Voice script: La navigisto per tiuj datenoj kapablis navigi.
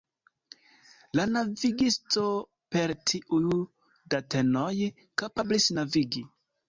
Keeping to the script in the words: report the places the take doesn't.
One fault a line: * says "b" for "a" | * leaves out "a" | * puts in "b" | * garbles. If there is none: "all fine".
all fine